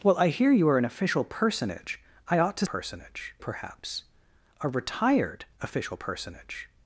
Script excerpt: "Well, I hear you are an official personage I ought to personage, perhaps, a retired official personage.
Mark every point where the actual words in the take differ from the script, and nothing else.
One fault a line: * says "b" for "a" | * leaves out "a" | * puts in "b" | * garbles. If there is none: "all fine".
all fine